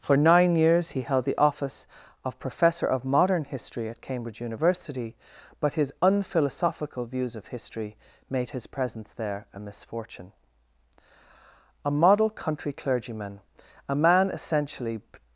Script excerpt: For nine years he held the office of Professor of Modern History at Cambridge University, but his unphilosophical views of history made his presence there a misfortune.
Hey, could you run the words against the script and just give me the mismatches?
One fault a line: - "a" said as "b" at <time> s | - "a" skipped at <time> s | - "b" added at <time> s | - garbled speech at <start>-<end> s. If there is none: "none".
- "A model country clergyman a man essentially" added at 11.8 s